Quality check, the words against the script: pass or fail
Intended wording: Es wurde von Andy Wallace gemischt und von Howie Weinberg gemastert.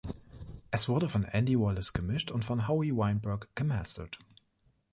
pass